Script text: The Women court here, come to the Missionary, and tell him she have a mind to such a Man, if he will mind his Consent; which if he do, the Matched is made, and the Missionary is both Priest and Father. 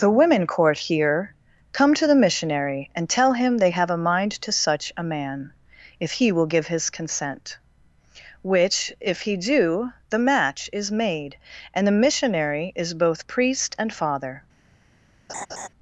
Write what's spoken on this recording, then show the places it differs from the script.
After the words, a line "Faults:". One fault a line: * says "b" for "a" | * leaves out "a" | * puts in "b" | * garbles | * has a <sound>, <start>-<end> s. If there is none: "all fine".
The Women court here, come to the Missionary, and tell him they have a mind to such a Man, if he will give his Consent; which if he do, the Match is made, and the Missionary is both Priest and Father.
Faults:
* says "they" for "she"
* says "give" for "mind"
* says "Match" for "Matched"
* has a laugh, 15.3-15.7 s